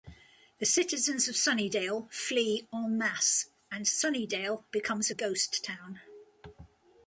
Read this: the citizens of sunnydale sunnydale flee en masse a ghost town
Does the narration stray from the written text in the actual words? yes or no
yes